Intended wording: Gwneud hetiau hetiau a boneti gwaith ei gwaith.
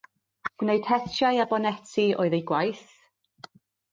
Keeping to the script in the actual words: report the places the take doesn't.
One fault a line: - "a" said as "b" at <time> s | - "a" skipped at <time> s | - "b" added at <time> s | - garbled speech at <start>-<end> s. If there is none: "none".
- "hetiau" skipped at 1.4 s
- "gwaith" said as "oedd" at 2.3 s